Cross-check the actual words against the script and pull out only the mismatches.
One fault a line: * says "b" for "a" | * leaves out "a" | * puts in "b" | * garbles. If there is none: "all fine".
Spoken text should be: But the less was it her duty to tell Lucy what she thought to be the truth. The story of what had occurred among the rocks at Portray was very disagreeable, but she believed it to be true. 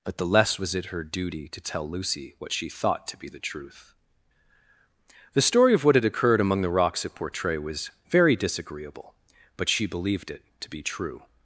all fine